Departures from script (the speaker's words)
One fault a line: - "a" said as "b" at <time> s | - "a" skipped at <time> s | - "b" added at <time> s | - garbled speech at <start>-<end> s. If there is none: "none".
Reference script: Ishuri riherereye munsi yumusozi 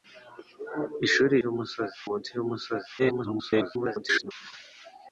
- "riherereye" said as "yumusozi" at 1.4 s
- garbled speech at 3.0-4.3 s